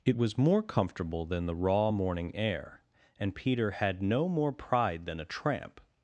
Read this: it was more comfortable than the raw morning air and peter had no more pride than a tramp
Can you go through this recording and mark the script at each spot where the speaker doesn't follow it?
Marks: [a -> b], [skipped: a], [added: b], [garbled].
it was more comfortable than the raw morning air and peter had no more pride than a tramp